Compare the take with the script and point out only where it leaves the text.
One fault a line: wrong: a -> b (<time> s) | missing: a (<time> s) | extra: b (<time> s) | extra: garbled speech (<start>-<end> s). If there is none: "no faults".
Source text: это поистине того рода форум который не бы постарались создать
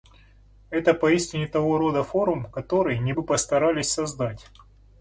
no faults